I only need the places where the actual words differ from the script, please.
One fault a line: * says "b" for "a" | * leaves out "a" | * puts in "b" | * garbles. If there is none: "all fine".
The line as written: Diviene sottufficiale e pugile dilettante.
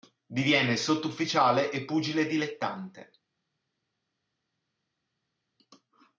all fine